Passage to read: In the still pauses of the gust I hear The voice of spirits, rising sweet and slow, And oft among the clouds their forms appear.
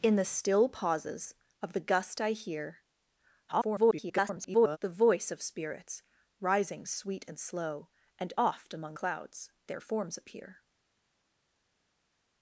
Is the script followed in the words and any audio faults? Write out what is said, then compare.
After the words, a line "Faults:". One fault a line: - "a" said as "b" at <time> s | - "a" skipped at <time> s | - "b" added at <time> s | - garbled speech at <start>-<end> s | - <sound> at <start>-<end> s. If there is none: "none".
In the still pauses of the gust I hear [garbled] The voice of spirits, rising sweet and slow, And oft among clouds their forms appear.
Faults:
- garbled speech at 3.5-4.8 s
- "the" skipped at 9.0 s